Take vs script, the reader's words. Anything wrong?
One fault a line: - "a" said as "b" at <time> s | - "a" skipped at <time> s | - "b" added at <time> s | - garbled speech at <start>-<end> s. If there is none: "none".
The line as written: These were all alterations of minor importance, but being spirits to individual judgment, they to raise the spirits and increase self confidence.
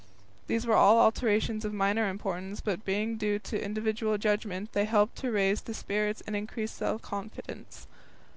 - "spirits" said as "due" at 3.2 s
- "helped" added at 4.8 s